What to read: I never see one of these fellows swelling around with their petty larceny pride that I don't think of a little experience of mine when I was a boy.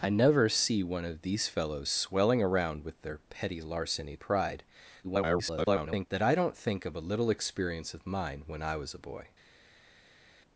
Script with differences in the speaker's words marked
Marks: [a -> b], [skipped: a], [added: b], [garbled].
I never see one of these fellows swelling around with their petty larceny pride [garbled] that I don't think of a little experience of mine when I was a boy.